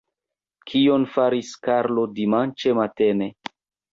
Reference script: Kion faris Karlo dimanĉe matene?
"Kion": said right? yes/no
yes